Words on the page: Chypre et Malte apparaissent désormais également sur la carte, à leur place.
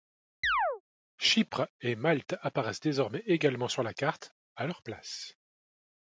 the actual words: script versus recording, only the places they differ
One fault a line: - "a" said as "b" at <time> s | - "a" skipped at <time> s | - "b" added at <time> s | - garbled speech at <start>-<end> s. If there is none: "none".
none